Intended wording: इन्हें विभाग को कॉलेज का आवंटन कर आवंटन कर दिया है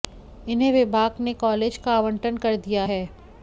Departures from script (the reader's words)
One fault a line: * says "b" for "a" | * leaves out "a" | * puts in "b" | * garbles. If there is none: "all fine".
* says "ने" for "को"
* leaves out "आवंटन कर"